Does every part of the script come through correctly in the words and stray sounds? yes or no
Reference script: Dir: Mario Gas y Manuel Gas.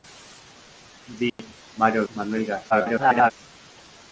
no